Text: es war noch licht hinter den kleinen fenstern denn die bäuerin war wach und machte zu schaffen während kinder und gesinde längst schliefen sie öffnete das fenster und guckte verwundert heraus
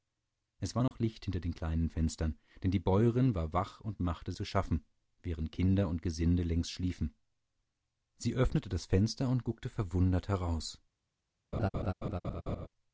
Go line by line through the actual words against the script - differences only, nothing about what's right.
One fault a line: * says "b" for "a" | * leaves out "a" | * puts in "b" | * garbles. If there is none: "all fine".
all fine